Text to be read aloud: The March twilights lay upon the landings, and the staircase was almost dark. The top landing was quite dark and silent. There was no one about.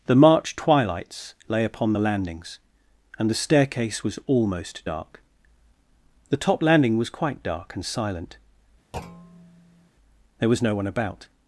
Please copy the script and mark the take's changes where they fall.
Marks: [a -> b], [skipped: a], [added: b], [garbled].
The March twilights lay upon the landings, and the staircase was almost dark. The top landing was quite dark and silent. There was no one about.